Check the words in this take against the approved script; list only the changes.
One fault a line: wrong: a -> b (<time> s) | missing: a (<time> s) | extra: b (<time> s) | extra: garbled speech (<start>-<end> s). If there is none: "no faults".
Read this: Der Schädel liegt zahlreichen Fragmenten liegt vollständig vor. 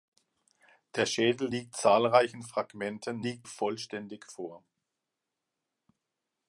no faults